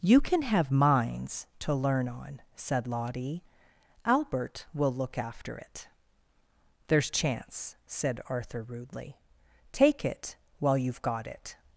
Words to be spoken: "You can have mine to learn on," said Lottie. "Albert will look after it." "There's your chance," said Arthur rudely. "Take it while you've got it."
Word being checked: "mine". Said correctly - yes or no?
no